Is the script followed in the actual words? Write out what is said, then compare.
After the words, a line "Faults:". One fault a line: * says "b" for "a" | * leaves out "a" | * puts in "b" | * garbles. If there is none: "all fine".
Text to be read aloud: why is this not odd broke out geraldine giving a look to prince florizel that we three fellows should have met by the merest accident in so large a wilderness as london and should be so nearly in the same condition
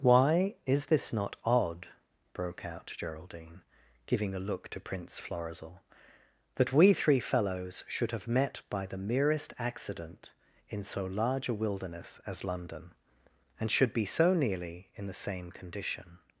why is this not odd broke out geraldine giving a look to prince florizel that we three fellows should have met by the merest accident in so large a wilderness as london and should be so nearly in the same condition
Faults:
all fine